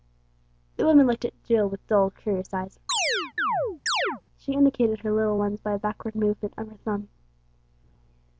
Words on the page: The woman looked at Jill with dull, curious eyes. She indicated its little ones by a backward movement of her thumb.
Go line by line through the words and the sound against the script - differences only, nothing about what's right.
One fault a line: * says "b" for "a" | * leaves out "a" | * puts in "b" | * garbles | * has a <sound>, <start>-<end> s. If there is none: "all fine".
* has a chirp, 2.9-4.2 s
* says "her" for "its"